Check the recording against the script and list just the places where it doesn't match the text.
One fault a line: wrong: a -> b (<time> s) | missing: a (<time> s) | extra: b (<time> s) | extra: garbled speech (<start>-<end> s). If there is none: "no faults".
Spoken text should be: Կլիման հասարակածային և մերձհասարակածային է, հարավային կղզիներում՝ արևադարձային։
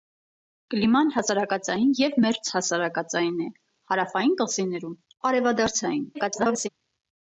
extra: garbled speech (6.1-6.7 s)